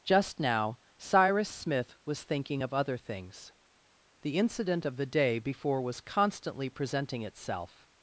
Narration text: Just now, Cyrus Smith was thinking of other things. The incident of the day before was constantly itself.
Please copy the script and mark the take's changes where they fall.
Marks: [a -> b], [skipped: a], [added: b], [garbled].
Just now, Cyrus Smith was thinking of other things. The incident of the day before was constantly [added: presenting] itself.